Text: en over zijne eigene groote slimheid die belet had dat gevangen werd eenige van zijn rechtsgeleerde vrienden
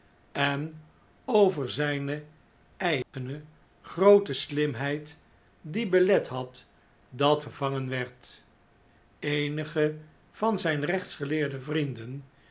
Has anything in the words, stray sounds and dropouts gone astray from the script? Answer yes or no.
yes